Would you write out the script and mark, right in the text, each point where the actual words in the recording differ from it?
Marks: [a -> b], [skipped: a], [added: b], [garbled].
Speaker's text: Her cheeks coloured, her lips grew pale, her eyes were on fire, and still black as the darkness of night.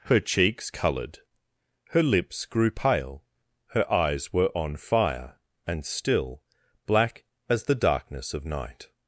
Her cheeks coloured, her lips grew pale, her eyes were on fire, and still black as the darkness of night.